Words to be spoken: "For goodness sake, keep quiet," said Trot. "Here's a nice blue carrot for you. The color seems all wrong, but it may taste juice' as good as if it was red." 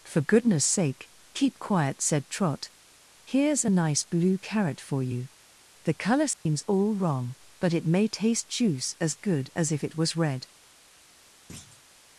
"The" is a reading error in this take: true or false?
false